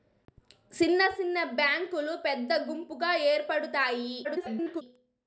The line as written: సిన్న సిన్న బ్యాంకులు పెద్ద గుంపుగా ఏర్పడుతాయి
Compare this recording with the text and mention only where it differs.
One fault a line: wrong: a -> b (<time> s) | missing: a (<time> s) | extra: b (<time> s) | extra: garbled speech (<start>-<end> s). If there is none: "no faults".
extra: garbled speech (4.2-4.8 s)